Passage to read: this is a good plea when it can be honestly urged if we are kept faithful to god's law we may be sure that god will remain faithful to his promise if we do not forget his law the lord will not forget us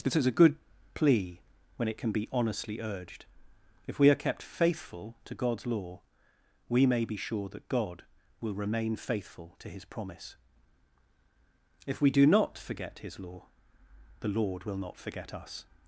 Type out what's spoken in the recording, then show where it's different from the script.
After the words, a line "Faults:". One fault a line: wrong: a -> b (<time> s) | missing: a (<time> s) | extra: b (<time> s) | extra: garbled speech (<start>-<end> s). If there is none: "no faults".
this is a good plea when it can be honestly urged if we are kept faithful to god's law we may be sure that god will remain faithful to his promise if we do not forget his law the lord will not forget us
Faults:
no faults